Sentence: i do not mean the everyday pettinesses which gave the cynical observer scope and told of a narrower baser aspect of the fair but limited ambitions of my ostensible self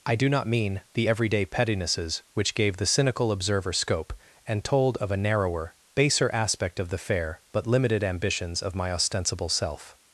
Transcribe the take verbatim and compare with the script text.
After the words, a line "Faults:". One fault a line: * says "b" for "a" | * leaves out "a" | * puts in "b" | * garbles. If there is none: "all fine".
i do not mean the everyday pettinesses which gave the cynical observer scope and told of a narrower baser aspect of the fair but limited ambitions of my ostensible self
Faults:
all fine